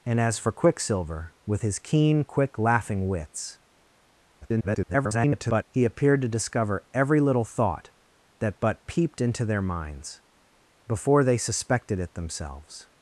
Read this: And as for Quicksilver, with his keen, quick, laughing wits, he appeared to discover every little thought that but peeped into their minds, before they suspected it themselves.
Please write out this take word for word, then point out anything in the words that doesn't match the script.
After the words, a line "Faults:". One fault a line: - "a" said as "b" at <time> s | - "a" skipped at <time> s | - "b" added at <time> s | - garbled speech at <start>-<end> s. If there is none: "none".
And as for Quicksilver, with his keen, quick, laughing wits, [garbled] he appeared to discover every little thought that but peeped into their minds, before they suspected it themselves.
Faults:
- garbled speech at 4.4-5.6 s